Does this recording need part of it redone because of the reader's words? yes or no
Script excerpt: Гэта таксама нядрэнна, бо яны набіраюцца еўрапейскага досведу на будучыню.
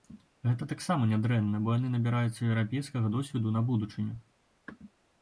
no